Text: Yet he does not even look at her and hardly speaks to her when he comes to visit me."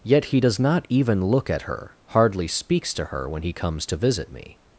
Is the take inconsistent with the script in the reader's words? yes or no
yes